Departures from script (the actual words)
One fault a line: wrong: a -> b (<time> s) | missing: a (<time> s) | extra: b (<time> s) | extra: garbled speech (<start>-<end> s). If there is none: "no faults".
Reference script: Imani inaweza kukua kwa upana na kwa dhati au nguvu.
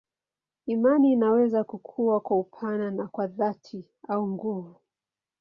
no faults